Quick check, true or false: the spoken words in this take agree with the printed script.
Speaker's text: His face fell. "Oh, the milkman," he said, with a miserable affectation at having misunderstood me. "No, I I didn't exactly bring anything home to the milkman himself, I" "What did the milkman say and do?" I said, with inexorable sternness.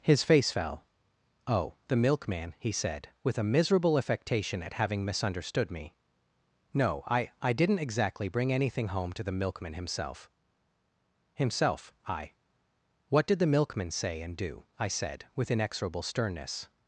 false